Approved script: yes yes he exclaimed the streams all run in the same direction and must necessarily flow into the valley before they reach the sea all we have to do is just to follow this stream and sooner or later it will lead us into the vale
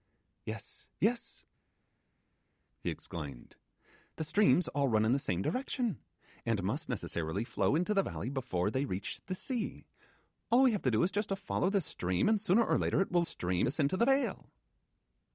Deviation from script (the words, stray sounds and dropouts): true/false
true